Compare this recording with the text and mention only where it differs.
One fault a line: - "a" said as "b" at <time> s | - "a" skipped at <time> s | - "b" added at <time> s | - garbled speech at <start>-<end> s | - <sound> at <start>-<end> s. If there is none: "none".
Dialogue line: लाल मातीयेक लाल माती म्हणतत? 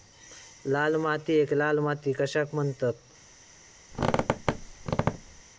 - "कशाक" added at 2.1 s
- squeak at 3.9-5.4 s